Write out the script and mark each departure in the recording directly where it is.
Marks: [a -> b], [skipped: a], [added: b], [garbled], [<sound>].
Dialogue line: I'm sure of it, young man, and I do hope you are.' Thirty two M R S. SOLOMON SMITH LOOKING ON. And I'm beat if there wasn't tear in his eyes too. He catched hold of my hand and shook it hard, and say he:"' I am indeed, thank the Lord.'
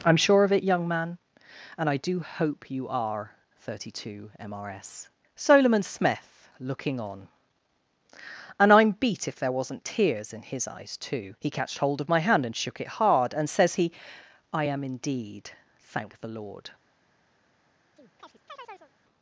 I'm sure of it, young man, and I do hope you are.' Thirty two M R S. SOLOMON SMITH LOOKING ON. And I'm beat if there wasn't [tear -> tears] in his eyes too. He catched hold of my hand and shook it hard, and [say -> says] he:"' I am indeed, thank the Lord.' [chirp]